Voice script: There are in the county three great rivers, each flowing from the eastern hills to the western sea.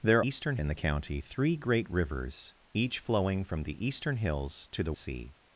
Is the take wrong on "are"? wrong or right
wrong